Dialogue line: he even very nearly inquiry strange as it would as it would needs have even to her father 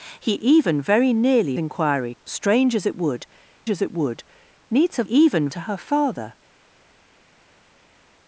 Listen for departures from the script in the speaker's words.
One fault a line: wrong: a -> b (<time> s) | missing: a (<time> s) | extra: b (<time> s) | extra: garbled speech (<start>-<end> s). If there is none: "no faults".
no faults